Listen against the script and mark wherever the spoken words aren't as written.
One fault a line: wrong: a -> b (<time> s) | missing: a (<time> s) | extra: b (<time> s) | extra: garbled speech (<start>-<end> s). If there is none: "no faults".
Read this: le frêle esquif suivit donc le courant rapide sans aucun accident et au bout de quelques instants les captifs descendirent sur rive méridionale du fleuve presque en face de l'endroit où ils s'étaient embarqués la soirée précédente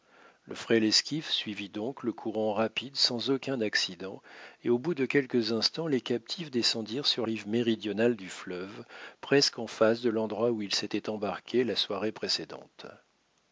no faults